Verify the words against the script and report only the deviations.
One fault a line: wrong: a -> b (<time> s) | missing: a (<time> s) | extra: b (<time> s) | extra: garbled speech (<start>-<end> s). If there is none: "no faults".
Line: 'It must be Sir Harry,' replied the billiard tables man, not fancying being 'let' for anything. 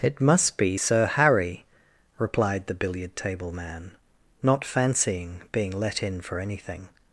wrong: tables -> table (3.2 s)
extra: in (6.0 s)